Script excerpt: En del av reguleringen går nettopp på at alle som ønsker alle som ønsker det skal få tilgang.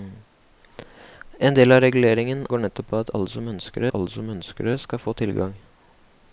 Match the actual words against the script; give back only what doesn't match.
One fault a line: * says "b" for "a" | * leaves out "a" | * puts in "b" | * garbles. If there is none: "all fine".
all fine